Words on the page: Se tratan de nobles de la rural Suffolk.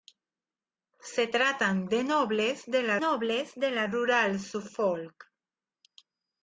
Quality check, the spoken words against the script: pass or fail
fail